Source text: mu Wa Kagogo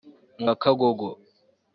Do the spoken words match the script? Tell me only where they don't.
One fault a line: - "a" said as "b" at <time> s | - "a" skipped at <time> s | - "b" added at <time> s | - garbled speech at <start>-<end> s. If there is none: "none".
none